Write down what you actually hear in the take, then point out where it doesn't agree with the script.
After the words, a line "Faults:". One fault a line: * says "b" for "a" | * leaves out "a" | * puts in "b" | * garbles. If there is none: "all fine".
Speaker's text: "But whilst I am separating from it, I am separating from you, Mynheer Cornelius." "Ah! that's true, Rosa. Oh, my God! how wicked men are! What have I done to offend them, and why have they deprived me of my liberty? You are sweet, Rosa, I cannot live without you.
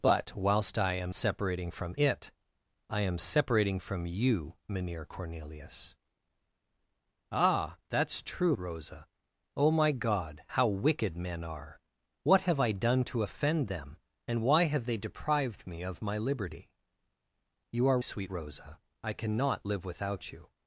"But whilst I am separating from it, I am separating from you, Mynheer Cornelius." "Ah! that's true, Rosa. Oh, my God! how wicked men are! What have I done to offend them, and why have they deprived me of my liberty? You are sweet, Rosa, I cannot live without you.
Faults:
all fine